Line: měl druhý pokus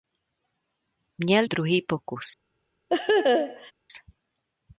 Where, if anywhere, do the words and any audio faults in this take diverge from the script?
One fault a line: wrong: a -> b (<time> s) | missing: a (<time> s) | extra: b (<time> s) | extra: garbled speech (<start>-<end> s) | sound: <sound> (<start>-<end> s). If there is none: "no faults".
sound: laugh (2.9-3.7 s)